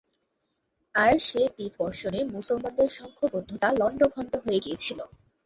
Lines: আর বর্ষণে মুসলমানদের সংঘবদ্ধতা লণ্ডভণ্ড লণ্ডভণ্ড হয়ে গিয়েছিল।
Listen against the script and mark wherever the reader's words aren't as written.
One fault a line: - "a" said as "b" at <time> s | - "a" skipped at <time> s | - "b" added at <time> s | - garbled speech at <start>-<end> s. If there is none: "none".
- "সে তীর" added at 1.2 s
- "লণ্ডভণ্ড" skipped at 4.3 s